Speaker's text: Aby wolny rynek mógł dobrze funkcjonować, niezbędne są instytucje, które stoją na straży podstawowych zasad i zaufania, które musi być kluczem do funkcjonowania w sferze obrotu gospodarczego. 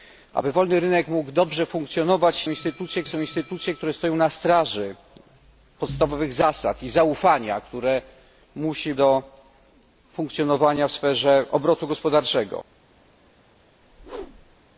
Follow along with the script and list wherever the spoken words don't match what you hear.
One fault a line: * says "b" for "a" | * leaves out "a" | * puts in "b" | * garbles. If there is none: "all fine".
* says "instytucje" for "niezbędne"
* leaves out "być kluczem"